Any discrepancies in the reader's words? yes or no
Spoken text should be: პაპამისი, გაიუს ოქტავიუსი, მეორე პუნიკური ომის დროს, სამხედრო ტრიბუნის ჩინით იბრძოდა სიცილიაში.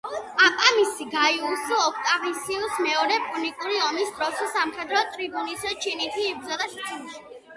no